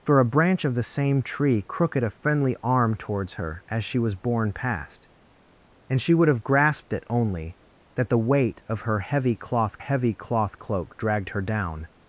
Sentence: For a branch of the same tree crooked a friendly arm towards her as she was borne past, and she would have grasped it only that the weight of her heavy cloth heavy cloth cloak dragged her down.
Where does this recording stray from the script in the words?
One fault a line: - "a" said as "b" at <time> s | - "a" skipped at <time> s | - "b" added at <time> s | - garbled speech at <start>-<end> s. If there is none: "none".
none